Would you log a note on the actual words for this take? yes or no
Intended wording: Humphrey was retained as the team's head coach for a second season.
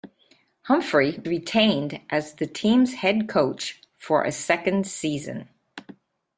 yes